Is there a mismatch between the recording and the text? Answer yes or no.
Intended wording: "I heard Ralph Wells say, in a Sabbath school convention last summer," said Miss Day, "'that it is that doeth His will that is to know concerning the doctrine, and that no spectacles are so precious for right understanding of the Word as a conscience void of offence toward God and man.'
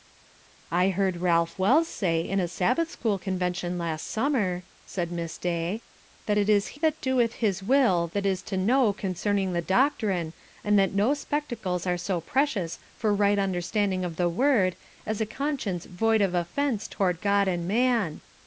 no